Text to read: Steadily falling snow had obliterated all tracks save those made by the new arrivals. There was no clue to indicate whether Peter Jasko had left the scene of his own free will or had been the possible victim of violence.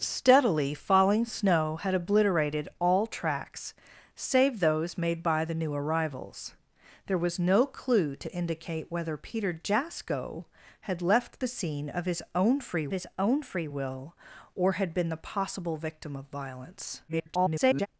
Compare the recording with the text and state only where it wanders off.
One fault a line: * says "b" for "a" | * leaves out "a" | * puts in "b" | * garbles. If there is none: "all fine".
* puts in "his own free"
* garbles